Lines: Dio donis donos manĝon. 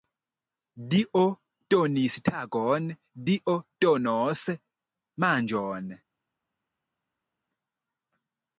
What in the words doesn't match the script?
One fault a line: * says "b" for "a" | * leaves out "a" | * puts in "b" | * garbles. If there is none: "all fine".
* puts in "tagon Dio"